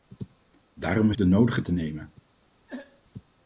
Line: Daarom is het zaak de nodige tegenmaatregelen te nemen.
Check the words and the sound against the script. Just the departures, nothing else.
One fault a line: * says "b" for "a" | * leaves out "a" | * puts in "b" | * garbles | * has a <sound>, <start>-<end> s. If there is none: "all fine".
* leaves out "het zaak"
* leaves out "tegenmaatregelen"
* has a throat clearing, 2.7-3.0 s